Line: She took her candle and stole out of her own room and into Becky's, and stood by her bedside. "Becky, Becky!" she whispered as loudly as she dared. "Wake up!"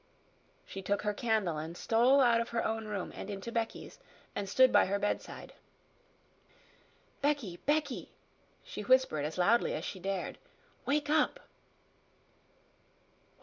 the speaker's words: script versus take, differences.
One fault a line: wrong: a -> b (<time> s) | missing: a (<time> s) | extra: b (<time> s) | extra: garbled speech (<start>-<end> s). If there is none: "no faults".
no faults